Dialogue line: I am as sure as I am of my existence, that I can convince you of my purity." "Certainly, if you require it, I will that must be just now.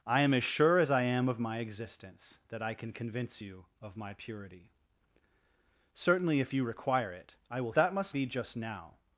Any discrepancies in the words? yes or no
no